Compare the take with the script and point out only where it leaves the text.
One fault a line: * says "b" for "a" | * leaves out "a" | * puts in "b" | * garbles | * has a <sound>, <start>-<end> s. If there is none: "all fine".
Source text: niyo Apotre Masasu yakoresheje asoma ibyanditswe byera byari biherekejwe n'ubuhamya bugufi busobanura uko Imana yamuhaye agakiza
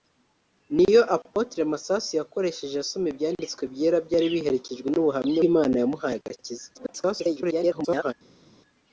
* leaves out "bugufi busobanura uko"
* garbles